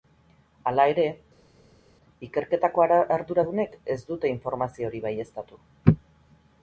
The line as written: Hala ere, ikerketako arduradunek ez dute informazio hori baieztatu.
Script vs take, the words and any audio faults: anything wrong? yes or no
no